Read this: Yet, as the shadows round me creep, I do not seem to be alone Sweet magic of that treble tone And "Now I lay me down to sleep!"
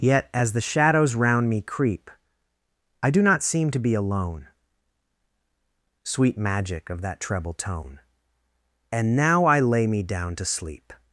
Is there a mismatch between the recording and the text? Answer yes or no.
no